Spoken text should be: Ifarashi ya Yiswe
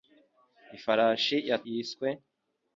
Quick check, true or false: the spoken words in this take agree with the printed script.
true